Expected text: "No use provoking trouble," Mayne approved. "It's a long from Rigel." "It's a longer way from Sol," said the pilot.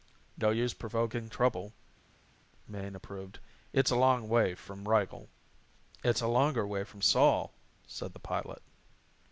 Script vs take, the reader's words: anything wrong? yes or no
yes